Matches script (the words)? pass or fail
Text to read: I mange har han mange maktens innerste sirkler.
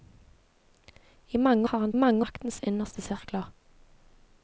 pass